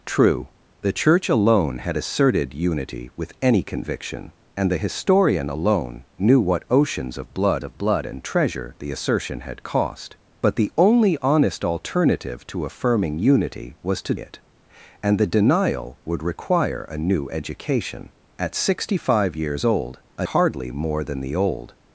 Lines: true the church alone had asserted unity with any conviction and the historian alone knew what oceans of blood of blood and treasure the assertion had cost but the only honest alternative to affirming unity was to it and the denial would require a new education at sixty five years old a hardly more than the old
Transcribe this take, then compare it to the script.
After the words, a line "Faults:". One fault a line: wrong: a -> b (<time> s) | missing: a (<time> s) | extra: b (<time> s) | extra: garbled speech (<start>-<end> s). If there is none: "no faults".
true the church alone had asserted unity with any conviction and the historian alone knew what oceans of blood of blood and treasure the assertion had cost but the only honest alternative to affirming unity was to it and the denial would require a new education at sixty five years old a hardly more than the old
Faults:
no faults